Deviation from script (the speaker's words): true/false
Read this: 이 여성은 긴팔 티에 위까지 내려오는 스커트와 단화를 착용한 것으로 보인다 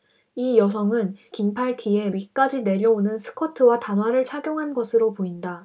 false